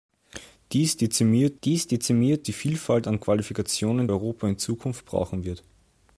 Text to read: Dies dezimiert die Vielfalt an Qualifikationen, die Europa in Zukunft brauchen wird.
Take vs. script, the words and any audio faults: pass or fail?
fail